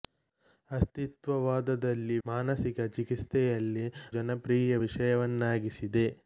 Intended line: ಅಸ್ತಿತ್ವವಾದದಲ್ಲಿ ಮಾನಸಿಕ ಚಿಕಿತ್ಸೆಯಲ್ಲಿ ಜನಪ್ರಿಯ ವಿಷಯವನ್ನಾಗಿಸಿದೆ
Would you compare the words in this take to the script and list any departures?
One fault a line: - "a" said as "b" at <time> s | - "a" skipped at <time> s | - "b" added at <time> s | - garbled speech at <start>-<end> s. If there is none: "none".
none